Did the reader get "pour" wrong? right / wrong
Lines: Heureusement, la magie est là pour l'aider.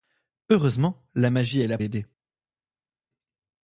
wrong